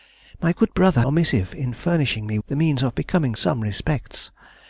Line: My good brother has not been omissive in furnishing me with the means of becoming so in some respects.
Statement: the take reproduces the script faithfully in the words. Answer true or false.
false